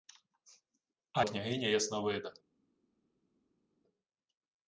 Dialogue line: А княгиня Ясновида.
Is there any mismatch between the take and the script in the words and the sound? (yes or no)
no